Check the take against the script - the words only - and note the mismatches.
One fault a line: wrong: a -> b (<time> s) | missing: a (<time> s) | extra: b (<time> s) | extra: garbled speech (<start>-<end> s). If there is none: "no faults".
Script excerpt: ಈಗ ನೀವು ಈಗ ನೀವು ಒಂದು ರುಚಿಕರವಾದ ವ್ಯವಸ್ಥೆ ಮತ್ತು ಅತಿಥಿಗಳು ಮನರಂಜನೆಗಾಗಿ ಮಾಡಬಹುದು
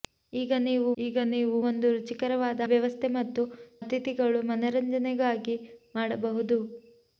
no faults